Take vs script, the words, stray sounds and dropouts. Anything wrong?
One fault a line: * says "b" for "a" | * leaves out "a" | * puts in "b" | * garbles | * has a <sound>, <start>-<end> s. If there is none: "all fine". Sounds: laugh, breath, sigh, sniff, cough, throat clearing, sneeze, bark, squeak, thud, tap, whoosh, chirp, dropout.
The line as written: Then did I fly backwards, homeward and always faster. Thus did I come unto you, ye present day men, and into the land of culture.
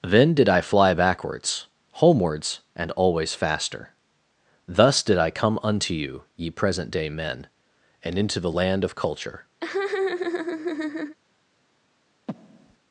* says "homewards" for "homeward"
* has a laugh, 9.6-11.2 s
* has a breath, 12.3-12.8 s